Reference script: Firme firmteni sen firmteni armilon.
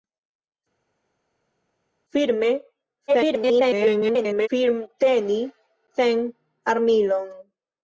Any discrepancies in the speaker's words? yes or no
yes